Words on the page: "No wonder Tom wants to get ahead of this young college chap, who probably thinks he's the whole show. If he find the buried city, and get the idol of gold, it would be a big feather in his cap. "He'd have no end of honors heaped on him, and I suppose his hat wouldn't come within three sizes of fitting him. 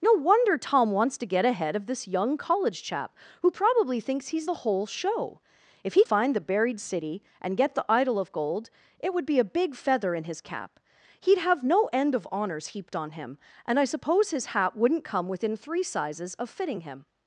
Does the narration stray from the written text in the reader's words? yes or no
no